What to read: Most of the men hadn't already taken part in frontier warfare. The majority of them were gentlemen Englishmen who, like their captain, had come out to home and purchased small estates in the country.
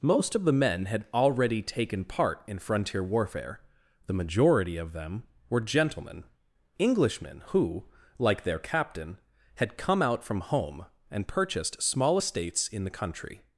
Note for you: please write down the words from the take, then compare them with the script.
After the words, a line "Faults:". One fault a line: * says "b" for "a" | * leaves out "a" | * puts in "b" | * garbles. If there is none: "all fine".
Most of the men had already taken part in frontier warfare. The majority of them were gentlemen Englishmen who, like their captain, had come out from home and purchased small estates in the country.
Faults:
* says "had" for "hadn't"
* says "from" for "to"